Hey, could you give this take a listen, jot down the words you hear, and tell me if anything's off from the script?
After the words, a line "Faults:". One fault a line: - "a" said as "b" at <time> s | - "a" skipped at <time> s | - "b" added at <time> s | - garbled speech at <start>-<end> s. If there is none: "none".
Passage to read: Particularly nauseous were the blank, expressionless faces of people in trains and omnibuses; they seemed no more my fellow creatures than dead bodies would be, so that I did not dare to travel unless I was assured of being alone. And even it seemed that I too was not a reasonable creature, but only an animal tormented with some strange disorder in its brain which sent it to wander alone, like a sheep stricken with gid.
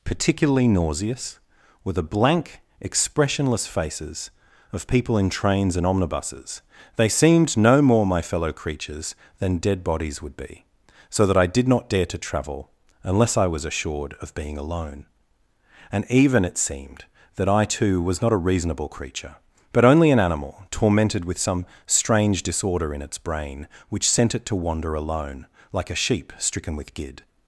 Particularly nauseous were the blank, expressionless faces of people in trains and omnibuses; they seemed no more my fellow creatures than dead bodies would be, so that I did not dare to travel unless I was assured of being alone. And even it seemed that I too was not a reasonable creature, but only an animal tormented with some strange disorder in its brain which sent it to wander alone, like a sheep stricken with gid.
Faults:
none